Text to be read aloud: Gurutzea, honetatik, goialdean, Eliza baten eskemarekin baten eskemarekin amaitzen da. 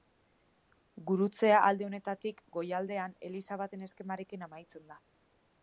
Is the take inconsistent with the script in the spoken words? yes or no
yes